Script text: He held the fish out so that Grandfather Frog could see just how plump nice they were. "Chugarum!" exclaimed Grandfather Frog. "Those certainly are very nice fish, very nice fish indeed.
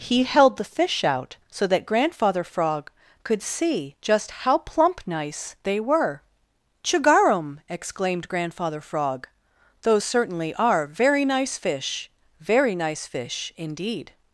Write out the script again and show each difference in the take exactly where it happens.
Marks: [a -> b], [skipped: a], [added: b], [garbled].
He held the fish out so that Grandfather Frog could see just how plump nice they were. "Chugarum!" exclaimed Grandfather Frog. "Those certainly are very nice fish, very nice fish indeed.